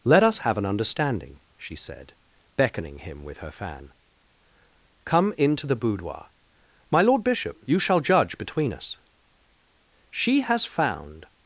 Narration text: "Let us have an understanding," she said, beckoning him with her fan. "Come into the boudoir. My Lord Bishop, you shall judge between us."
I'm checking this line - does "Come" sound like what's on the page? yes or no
yes